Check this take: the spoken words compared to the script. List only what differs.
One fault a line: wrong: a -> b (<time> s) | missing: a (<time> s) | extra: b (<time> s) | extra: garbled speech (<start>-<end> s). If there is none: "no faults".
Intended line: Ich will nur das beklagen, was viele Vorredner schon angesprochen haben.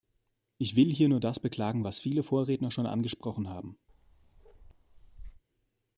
extra: hier (0.9 s)